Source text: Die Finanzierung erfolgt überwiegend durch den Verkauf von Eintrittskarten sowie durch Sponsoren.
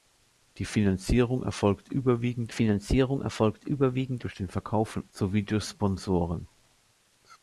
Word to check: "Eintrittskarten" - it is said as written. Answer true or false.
false